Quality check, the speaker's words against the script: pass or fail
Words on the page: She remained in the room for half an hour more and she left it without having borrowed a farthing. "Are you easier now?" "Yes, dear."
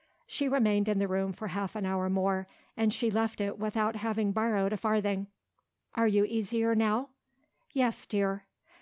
pass